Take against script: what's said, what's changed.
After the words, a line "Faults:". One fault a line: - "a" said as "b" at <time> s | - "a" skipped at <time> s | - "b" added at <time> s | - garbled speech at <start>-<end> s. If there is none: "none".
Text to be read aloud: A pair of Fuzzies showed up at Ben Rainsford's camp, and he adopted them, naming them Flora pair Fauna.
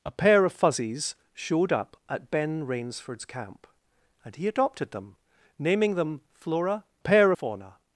A pair of Fuzzies showed up at Ben Rainsford's camp, and he adopted them, naming them Flora pair Fauna.
Faults:
none